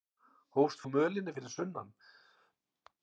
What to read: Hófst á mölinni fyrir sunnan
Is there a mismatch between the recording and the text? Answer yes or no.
no